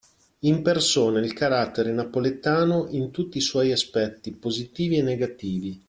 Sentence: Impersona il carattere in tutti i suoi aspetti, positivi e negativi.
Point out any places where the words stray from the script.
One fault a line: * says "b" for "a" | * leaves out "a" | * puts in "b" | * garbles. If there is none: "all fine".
* puts in "napoletano"